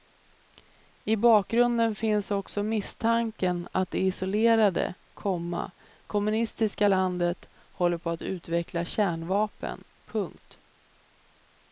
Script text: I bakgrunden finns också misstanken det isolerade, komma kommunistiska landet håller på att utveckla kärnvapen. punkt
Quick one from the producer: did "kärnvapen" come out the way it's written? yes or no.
yes